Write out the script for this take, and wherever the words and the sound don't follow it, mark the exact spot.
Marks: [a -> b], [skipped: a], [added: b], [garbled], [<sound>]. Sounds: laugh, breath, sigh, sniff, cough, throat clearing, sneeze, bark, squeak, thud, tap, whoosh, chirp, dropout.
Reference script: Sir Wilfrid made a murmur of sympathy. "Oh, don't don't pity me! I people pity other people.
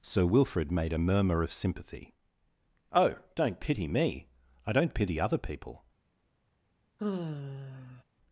Sir Wilfrid made a murmur of sympathy. "Oh, don't [skipped: don't] pity me! I [people -> don't] pity other people. [sigh]